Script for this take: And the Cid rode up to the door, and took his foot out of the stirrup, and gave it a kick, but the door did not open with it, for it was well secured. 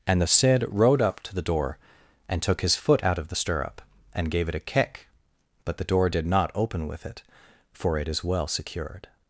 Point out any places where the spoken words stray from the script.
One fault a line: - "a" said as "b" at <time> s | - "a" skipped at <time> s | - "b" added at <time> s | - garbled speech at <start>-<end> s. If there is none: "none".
- "was" said as "is" at 8.1 s